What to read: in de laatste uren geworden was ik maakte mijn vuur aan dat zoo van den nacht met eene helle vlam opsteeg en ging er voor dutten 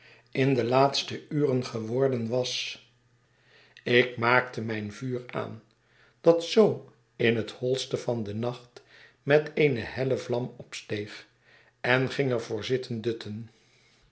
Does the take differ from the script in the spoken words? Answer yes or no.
yes